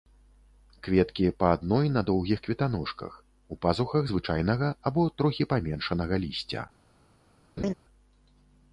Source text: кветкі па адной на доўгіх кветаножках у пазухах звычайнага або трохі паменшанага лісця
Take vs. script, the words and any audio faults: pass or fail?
fail